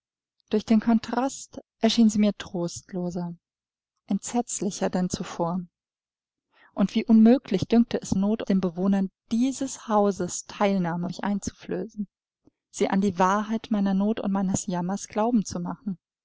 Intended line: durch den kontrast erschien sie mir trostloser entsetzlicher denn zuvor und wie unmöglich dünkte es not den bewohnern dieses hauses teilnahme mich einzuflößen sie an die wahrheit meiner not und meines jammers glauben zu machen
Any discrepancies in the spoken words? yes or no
no